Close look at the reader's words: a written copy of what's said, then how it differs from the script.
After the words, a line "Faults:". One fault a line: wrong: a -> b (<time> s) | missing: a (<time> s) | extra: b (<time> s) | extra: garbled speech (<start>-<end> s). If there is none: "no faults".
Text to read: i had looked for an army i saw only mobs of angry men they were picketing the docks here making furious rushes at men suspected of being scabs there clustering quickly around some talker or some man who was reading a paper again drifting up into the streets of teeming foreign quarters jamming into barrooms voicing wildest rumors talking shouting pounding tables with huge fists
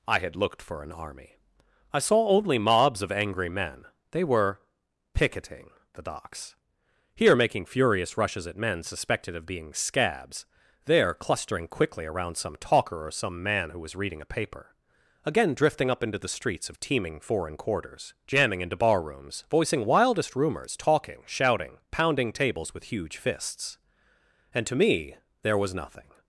i had looked for an army i saw only mobs of angry men they were picketing the docks here making furious rushes at men suspected of being scabs there clustering quickly around some talker or some man who was reading a paper again drifting up into the streets of teeming foreign quarters jamming into barrooms voicing wildest rumors talking shouting pounding tables with huge fists and to me there was nothing
Faults:
extra: and to me there was nothing (24.5 s)